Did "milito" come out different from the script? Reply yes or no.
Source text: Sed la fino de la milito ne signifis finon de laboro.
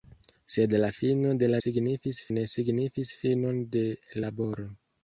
yes